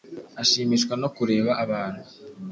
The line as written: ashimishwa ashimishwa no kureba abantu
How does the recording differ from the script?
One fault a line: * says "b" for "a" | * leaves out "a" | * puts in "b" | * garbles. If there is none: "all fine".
* leaves out "ashimishwa"